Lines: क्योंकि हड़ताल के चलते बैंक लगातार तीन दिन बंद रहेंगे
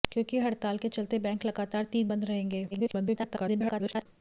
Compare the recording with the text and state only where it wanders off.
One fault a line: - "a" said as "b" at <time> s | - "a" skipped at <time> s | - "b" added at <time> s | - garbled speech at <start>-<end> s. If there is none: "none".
- "दिन" skipped at 2.1 s
- garbled speech at 2.7-4.1 s